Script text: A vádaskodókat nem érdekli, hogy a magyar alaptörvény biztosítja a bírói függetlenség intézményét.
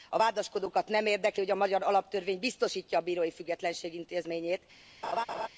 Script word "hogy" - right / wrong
right